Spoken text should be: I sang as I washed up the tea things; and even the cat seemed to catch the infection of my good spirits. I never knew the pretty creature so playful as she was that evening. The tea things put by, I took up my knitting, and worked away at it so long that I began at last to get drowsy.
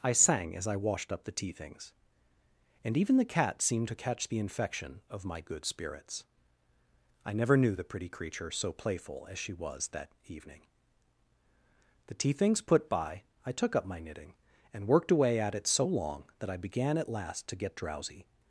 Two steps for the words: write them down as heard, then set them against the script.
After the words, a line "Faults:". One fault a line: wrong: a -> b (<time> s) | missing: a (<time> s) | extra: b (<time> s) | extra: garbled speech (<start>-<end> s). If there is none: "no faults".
I sang as I washed up the tea things; and even the cat seemed to catch the infection of my good spirits. I never knew the pretty creature so playful as she was that evening. The tea things put by, I took up my knitting, and worked away at it so long that I began at last to get drowsy.
Faults:
no faults